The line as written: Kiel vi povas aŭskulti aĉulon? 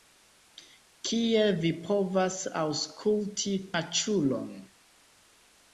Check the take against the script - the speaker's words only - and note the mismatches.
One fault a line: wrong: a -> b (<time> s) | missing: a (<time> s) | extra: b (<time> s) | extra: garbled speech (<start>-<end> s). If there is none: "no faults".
no faults